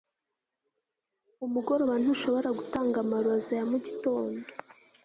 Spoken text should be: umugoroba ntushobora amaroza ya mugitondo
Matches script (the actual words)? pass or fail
fail